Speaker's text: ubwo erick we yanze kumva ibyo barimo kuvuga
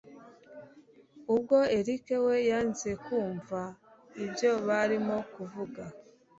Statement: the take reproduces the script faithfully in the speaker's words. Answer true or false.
true